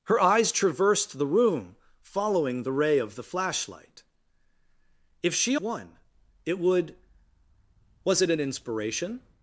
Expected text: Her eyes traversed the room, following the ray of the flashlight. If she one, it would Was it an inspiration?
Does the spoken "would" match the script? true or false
true